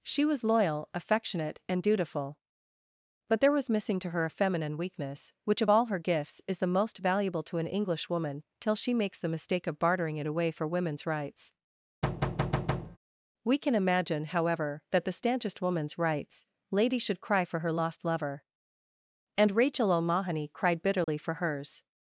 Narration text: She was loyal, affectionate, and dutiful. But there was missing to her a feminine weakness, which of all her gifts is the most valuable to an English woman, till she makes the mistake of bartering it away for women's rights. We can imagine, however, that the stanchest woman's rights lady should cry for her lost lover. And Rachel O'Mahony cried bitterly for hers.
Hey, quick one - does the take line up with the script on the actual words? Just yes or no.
yes